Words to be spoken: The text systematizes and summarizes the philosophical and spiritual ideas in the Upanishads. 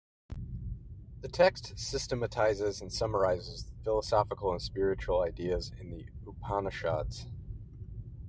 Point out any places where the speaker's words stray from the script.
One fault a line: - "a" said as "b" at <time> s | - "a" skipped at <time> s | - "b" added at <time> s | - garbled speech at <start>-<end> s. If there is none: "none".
- "the" skipped at 3.8 s